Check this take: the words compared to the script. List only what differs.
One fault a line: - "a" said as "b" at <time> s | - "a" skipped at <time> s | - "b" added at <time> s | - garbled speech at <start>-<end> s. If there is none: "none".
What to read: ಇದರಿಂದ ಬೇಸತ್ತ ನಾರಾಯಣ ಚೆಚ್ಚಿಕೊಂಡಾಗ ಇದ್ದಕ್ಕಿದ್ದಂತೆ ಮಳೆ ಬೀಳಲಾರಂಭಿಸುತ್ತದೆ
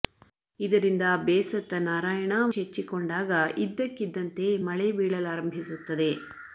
none